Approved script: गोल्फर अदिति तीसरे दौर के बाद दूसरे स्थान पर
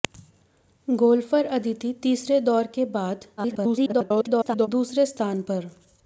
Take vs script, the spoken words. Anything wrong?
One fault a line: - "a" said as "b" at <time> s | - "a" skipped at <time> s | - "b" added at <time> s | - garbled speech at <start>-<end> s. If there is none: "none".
- garbled speech at 3.4-4.7 s